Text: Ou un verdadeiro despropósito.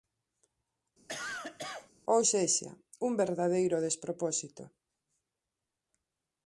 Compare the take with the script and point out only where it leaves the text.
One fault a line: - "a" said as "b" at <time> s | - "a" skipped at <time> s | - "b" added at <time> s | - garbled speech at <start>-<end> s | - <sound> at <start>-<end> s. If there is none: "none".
- cough at 1.1-1.9 s
- "sexa" added at 2.3 s